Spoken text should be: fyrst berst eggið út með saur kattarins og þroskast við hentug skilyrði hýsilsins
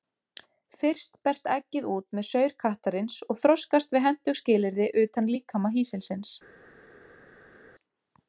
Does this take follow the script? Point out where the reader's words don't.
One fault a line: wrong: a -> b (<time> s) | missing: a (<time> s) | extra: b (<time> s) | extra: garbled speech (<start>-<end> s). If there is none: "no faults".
extra: utan líkama (5.0 s)